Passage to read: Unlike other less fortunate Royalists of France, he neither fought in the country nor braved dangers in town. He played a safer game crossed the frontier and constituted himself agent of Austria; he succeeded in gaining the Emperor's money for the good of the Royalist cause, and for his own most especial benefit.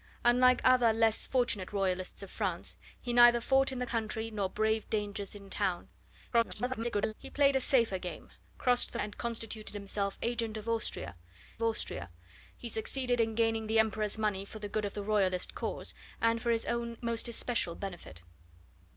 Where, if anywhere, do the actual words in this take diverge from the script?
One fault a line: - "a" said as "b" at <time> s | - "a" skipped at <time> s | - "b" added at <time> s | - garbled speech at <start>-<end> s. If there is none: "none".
- garbled speech at 6.3-7.1 s
- "frontier" skipped at 9.0 s
- "Austria" added at 11.6 s